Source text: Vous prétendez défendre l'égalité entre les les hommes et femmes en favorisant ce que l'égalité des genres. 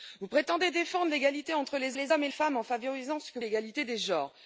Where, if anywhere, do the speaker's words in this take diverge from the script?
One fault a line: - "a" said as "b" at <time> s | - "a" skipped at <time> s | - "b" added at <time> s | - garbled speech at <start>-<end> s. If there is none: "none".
none